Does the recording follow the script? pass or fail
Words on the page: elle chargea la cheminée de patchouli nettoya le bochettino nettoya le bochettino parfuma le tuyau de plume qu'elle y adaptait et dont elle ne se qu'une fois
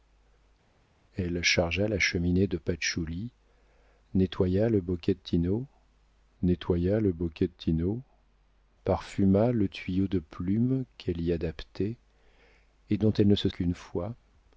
pass